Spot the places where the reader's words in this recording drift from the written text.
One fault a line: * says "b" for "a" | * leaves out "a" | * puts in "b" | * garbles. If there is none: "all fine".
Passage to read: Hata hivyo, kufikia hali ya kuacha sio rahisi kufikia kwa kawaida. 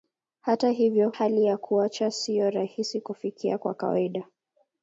* leaves out "kufikia"